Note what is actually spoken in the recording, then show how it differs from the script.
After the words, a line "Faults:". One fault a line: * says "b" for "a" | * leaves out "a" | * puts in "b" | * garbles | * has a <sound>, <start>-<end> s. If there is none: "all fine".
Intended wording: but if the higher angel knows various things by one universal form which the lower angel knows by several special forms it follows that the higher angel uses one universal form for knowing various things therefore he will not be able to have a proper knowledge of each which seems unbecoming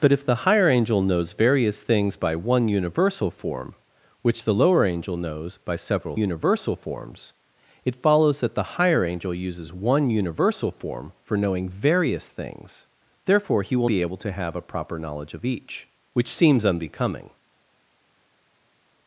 but if the higher angel knows various things by one universal form which the lower angel knows by several universal forms it follows that the higher angel uses one universal form for knowing various things therefore he will be able to have a proper knowledge of each which seems unbecoming
Faults:
* says "universal" for "special"
* leaves out "not"